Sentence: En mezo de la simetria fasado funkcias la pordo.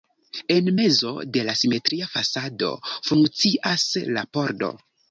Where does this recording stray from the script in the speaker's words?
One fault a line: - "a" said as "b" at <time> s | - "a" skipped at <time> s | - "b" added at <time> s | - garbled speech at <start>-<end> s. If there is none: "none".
none